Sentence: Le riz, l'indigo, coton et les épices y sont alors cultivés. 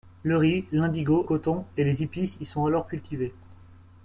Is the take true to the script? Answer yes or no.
yes